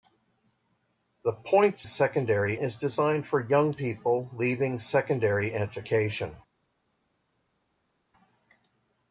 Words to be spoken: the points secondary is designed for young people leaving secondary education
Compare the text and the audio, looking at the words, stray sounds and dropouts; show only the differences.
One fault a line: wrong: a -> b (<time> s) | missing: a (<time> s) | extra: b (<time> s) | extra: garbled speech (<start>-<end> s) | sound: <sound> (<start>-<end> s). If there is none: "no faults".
no faults